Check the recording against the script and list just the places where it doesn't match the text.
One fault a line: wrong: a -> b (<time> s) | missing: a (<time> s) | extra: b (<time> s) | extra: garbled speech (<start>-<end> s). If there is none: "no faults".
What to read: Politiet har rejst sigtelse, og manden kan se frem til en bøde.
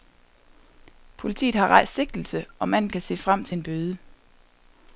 no faults